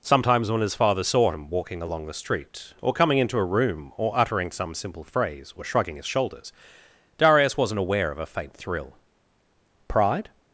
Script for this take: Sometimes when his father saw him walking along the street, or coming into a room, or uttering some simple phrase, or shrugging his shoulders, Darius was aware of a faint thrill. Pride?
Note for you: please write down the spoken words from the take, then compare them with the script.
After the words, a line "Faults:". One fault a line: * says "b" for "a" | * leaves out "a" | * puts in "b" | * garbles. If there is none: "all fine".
Sometimes when his father saw him walking along the street, or coming into a room, or uttering some simple phrase, or shrugging his shoulders, Darius wasn't aware of a faint thrill. Pride?
Faults:
* says "wasn't" for "was"